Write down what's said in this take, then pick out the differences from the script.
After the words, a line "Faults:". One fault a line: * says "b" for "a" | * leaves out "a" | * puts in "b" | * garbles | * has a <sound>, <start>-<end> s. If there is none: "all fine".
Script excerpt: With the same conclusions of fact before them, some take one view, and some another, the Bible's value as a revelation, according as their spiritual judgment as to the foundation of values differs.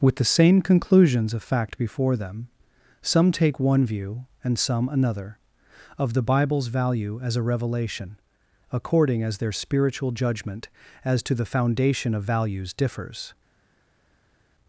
With the same conclusions of fact before them, some take one view, and some another, of the Bible's value as a revelation, according as their spiritual judgment as to the foundation of values differs.
Faults:
* puts in "of"